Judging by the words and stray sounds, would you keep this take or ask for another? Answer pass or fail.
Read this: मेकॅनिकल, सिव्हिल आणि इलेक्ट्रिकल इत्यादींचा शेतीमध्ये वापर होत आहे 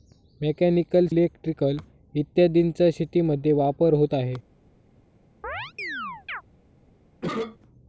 fail